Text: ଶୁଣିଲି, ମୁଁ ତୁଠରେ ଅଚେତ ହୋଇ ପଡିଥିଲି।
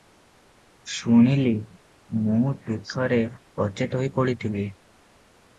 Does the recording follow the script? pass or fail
pass